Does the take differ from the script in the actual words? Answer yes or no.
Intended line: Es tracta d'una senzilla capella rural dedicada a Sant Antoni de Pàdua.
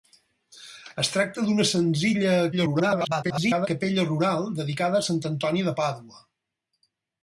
yes